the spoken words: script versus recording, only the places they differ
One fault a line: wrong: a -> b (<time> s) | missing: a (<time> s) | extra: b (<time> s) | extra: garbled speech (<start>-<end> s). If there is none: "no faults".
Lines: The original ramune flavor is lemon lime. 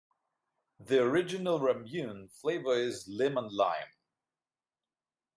no faults